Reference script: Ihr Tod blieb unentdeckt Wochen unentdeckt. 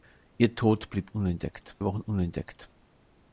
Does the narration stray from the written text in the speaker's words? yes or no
no